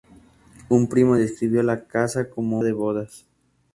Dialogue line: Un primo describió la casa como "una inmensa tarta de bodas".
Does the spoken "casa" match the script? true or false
true